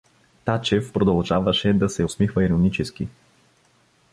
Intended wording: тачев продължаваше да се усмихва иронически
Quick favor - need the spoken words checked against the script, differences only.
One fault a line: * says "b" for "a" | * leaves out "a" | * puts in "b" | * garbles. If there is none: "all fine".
all fine